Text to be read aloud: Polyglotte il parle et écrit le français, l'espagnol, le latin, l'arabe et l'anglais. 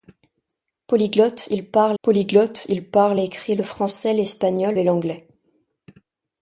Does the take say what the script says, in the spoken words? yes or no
no